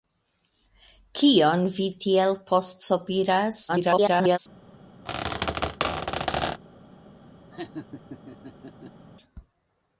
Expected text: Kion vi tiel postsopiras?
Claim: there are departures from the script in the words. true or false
true